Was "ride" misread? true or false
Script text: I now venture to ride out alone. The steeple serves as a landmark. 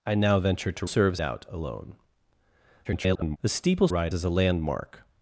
true